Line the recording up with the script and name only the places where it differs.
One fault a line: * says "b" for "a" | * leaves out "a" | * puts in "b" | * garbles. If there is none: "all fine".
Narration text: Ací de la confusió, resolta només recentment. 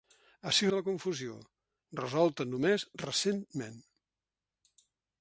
all fine